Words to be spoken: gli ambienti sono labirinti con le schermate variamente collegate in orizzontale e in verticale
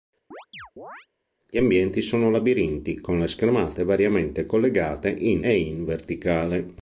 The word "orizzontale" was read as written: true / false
false